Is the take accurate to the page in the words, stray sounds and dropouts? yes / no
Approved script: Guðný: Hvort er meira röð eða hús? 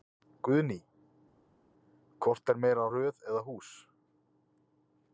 yes